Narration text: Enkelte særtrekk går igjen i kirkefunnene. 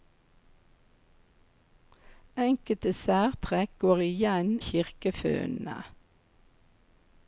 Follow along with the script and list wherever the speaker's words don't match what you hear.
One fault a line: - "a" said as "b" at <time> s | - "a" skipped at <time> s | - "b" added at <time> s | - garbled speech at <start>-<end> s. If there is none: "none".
- "i" skipped at 4.5 s